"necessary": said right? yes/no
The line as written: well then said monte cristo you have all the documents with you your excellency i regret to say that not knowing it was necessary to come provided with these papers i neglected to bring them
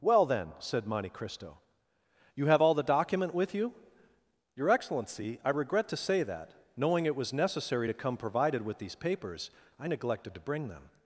yes